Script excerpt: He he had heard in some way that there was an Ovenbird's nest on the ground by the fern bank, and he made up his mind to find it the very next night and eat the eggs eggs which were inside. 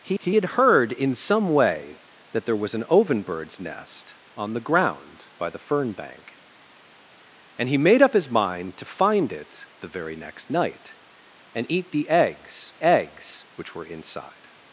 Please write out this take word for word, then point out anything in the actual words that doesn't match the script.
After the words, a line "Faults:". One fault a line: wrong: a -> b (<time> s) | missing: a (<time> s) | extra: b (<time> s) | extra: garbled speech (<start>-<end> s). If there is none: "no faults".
He he had heard in some way that there was an Ovenbird's nest on the ground by the fern bank, and he made up his mind to find it the very next night and eat the eggs eggs which were inside.
Faults:
no faults